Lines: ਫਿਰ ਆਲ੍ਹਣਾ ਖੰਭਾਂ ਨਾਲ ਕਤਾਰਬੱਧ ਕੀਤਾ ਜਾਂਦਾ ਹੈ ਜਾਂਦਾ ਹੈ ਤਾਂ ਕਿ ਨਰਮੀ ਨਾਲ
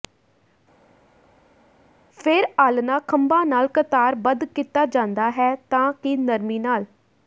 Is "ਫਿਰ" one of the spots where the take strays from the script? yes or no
no